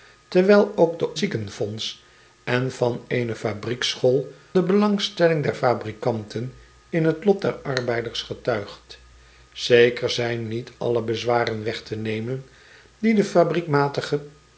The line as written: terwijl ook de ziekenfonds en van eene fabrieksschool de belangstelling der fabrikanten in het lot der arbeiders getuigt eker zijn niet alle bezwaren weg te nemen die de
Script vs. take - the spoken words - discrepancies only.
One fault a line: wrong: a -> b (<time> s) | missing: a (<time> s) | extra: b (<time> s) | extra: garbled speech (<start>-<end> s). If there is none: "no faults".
no faults